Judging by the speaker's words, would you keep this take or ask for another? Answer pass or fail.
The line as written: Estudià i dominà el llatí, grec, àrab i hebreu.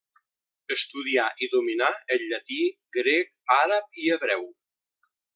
pass